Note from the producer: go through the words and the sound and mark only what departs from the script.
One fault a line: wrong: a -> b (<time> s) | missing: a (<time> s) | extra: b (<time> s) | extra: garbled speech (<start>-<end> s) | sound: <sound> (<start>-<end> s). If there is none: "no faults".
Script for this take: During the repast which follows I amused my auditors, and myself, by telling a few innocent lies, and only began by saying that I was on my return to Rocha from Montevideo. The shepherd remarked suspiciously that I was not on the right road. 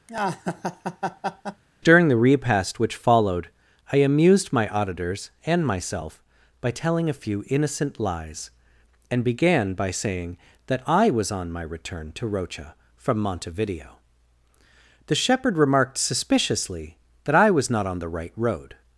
sound: laugh (0.1-1.6 s)
wrong: follows -> followed (3.0 s)
missing: only (9.2 s)